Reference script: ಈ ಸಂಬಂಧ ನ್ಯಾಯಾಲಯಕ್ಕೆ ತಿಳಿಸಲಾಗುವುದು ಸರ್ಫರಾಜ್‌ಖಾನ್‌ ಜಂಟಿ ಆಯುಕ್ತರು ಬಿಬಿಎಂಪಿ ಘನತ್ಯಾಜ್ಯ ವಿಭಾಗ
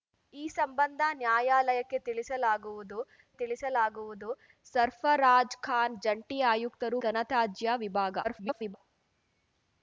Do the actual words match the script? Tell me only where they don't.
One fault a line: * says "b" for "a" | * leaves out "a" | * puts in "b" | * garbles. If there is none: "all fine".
* puts in "ತಿಳಿಸಲಾಗುವುದು"
* leaves out "ಬಿಬಿಎಂಪಿ"
* garbles